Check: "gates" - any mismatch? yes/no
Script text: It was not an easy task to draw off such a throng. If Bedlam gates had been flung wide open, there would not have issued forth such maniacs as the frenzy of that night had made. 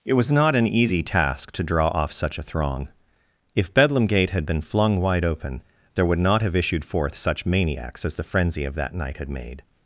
yes